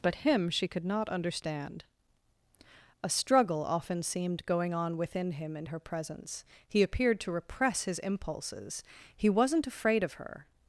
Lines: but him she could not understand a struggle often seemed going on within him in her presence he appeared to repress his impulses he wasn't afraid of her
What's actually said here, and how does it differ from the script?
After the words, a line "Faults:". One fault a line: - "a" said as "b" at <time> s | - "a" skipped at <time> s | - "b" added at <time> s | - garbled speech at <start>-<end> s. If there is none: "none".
but him she could not understand a struggle often seemed going on within him in her presence he appeared to repress his impulses he wasn't afraid of her
Faults:
none